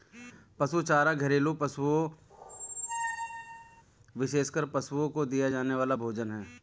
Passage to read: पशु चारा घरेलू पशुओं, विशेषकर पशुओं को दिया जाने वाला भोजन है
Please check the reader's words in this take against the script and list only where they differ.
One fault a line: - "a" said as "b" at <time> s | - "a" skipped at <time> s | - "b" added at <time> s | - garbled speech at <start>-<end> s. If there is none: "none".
none